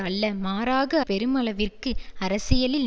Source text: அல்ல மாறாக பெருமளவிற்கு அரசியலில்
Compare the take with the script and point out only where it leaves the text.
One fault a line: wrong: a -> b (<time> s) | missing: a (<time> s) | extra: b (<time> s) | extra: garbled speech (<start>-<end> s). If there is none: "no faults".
no faults